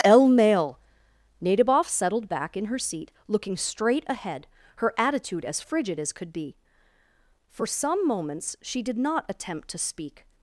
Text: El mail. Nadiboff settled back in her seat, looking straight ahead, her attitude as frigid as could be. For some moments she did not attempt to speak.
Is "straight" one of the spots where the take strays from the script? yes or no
no